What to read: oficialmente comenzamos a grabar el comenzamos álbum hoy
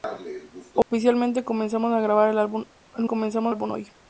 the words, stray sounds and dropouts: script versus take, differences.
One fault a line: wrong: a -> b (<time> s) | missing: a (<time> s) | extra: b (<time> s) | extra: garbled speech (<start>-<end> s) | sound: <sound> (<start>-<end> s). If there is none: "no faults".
sound: dropout (0.8-0.9 s)